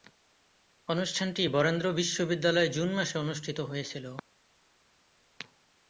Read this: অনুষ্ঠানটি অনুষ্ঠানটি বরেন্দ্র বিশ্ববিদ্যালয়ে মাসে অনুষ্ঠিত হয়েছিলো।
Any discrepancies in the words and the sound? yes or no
yes